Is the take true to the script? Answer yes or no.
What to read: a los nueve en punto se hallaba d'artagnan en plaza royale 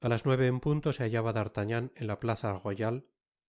no